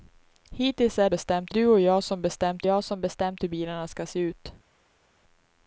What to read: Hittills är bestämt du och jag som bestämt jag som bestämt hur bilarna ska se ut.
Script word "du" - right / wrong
right